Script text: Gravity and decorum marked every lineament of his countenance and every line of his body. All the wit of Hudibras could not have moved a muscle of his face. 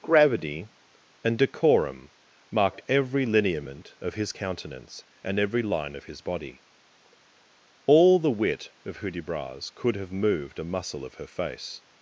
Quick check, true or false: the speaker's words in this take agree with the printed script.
false